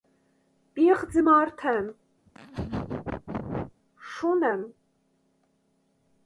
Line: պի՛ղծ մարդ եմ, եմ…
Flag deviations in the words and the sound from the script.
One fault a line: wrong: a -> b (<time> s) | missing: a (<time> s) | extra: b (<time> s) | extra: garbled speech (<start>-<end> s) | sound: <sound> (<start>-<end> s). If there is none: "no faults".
sound: laugh (2.3-3.7 s)
extra: շո՛ւն (4.1 s)